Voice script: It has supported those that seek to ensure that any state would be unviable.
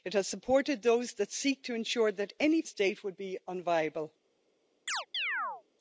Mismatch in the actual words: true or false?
false